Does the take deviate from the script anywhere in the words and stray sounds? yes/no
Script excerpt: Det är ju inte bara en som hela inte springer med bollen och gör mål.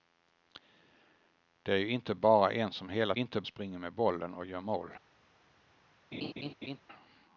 yes